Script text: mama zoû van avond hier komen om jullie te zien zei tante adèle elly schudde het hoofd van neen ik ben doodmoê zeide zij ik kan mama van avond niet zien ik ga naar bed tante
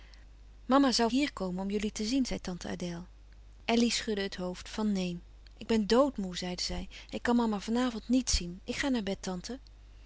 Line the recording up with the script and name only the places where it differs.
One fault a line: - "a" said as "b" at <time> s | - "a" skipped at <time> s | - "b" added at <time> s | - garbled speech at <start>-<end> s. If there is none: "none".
- "van avond" skipped at 1.1 s